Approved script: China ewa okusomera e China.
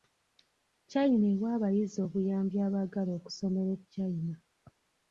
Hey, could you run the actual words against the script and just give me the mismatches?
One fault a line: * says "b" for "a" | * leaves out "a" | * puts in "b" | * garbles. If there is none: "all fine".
* puts in "abayizi obuyambi abaagala"